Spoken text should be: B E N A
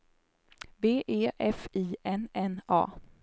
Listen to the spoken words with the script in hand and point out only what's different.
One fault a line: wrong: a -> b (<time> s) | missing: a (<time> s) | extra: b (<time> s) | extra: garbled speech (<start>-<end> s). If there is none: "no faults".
extra: F I N (1.4 s)